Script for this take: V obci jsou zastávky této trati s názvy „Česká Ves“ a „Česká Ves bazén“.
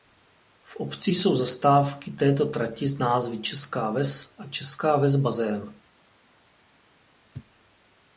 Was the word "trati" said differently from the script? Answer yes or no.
no